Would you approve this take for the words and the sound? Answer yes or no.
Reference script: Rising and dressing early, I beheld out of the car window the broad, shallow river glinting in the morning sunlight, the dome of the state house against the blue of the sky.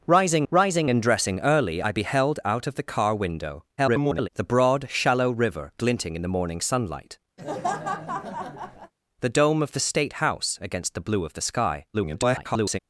no